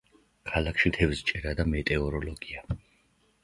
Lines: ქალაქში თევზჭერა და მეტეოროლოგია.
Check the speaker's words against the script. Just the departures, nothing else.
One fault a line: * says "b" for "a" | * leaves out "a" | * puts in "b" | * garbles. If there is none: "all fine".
all fine